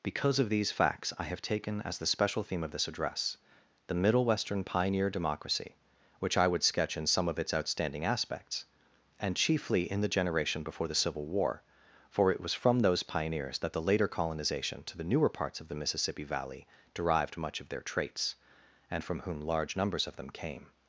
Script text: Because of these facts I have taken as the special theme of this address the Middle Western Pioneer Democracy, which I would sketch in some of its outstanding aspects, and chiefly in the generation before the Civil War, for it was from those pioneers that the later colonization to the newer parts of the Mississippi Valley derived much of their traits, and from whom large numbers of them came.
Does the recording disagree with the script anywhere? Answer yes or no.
no